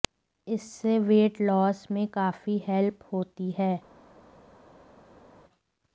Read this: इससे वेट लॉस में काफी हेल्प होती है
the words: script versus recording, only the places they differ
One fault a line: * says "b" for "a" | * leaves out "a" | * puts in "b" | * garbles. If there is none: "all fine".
all fine